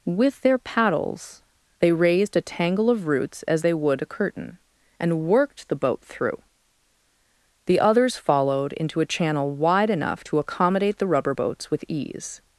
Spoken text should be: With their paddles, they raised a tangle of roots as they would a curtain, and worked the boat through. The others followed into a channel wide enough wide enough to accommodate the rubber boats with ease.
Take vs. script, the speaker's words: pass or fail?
fail